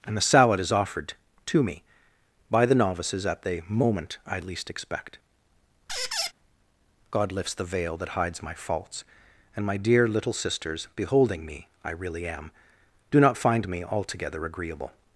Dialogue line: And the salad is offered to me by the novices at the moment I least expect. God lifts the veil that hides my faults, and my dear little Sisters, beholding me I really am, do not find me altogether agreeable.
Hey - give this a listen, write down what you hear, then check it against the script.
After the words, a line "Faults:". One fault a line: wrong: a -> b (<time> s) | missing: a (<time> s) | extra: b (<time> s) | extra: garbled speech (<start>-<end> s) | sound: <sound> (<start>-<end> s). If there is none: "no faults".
And the salad is offered to me by the novices at the moment I least expect. God lifts the veil that hides my faults, and my dear little Sisters, beholding me I really am, do not find me altogether agreeable.
Faults:
sound: squeak (5.9-6.3 s)